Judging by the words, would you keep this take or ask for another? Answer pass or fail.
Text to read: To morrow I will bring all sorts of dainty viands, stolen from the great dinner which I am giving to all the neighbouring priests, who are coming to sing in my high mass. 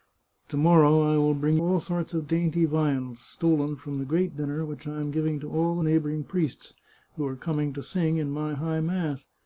pass